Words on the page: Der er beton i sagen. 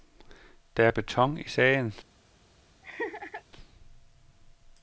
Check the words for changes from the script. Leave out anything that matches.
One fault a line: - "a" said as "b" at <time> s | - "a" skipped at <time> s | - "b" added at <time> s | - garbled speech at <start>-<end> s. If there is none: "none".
none